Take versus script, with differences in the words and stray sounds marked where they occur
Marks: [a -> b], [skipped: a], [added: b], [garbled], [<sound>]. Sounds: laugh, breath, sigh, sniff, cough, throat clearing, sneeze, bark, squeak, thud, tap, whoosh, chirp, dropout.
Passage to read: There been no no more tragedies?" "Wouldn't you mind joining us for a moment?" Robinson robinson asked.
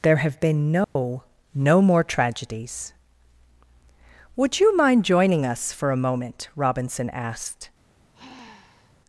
There [added: have] been no [dropout] no more tragedies?" ["Wouldn't -> Would] you mind joining us for a moment?" Robinson [skipped: robinson] asked. [sigh]